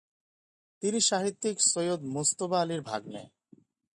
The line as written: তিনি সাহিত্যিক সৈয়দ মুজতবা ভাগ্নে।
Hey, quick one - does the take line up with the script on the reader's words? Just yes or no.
no